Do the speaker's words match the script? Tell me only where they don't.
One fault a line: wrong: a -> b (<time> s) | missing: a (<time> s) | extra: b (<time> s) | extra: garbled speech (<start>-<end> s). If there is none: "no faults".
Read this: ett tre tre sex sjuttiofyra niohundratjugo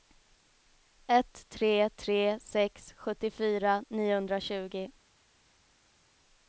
no faults